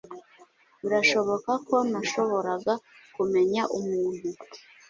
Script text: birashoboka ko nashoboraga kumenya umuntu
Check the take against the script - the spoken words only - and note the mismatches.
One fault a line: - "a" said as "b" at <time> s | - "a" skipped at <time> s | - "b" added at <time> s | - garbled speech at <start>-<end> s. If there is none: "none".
none